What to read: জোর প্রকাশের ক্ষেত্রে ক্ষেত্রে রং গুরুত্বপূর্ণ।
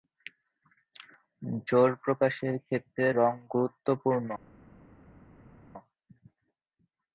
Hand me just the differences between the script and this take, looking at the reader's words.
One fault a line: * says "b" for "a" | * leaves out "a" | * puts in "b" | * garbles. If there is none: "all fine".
* leaves out "ক্ষেত্রে"